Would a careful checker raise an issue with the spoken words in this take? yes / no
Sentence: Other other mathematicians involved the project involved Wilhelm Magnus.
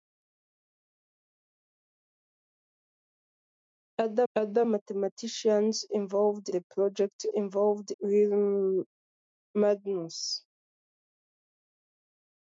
no